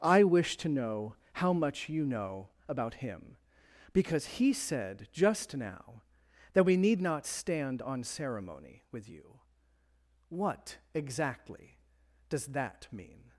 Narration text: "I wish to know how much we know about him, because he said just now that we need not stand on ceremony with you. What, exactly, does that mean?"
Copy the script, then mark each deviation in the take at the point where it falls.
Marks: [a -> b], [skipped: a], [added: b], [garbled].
"I wish to know how much [we -> you] know about him, because he said just now that we need not stand on ceremony with you. What, exactly, does that mean?"